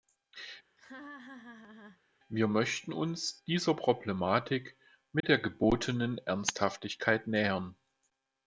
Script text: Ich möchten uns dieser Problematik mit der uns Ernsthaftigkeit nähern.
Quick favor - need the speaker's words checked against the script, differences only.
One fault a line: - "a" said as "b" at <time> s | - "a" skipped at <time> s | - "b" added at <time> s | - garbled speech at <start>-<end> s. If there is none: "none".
- "Ich" said as "Wir" at 2.3 s
- "uns" said as "gebotenen" at 5.4 s